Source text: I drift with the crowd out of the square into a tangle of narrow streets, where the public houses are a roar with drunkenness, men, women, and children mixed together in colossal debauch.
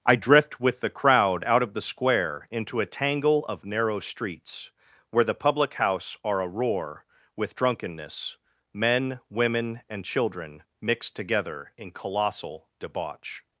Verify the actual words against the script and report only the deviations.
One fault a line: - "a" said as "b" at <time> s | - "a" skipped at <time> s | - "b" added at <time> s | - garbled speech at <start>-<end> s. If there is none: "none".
- "houses" said as "house" at 5.8 s